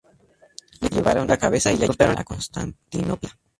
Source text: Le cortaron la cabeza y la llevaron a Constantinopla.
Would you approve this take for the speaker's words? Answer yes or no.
no